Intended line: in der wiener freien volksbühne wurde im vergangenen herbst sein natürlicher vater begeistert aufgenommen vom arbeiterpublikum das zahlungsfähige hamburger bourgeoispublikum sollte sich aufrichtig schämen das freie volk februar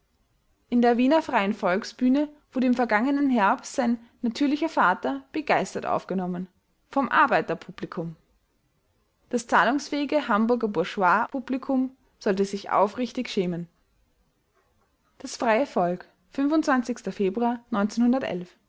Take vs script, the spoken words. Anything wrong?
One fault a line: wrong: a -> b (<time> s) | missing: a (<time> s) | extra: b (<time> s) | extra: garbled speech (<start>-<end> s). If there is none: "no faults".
no faults